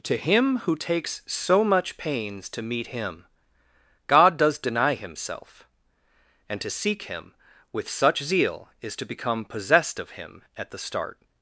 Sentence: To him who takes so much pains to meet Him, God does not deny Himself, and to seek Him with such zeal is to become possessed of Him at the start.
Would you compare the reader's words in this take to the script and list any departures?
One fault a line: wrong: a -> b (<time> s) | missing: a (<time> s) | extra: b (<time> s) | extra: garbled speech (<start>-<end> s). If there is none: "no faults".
missing: not (4.6 s)